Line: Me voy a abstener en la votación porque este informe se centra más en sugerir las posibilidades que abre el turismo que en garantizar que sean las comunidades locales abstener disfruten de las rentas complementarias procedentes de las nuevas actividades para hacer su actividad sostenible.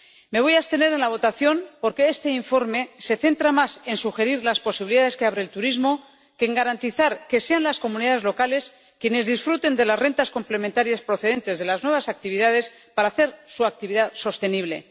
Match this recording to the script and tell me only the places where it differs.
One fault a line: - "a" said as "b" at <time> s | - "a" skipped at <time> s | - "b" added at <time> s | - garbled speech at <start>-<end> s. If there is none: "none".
- "abstener" said as "quienes" at 9.0 s